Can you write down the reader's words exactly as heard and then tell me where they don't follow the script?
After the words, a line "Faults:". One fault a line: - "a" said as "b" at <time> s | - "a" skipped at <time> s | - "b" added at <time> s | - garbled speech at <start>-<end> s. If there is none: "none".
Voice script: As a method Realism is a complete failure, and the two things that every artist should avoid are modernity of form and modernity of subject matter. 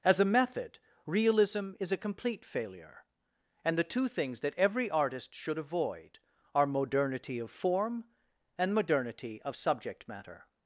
As a method Realism is a complete failure, and the two things that every artist should avoid are modernity of form and modernity of subject matter.
Faults:
none